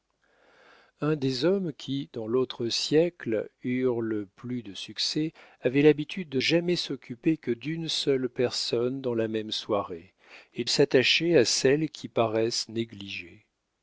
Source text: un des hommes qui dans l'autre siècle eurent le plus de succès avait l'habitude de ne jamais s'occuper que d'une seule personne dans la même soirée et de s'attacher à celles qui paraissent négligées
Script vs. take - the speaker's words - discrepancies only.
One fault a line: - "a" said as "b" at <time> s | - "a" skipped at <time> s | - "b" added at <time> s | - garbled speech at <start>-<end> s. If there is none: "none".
- "ne" skipped at 6.4 s
- "de" skipped at 10.6 s